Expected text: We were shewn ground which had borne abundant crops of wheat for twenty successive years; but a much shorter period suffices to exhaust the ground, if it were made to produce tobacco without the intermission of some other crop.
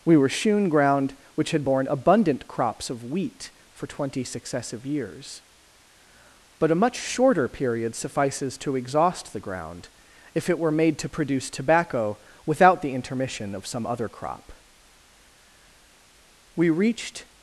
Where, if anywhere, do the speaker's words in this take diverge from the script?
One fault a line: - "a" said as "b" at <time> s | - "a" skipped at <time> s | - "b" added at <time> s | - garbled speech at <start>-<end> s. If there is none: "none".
- "We reached" added at 16.5 s